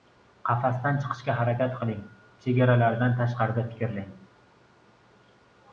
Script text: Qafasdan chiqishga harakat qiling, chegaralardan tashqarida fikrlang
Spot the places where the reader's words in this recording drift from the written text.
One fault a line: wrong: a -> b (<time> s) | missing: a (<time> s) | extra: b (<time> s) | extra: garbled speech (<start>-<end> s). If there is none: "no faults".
no faults